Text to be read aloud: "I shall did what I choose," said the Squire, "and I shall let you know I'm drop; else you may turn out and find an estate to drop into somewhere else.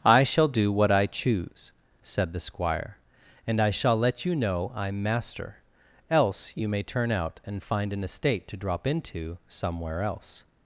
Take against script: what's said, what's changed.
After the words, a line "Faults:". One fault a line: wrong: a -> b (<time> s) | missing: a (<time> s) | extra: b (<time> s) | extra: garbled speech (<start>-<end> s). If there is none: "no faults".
"I shall do what I choose," said the Squire, "and I shall let you know I'm master; else you may turn out and find an estate to drop into somewhere else.
Faults:
wrong: did -> do (0.5 s)
wrong: drop -> master (5.0 s)